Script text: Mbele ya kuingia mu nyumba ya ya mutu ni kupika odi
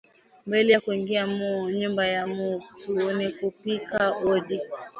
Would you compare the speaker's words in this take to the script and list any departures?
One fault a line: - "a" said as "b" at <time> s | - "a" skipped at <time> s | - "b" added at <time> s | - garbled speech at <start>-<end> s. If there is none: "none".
- "ya" skipped at 2.3 s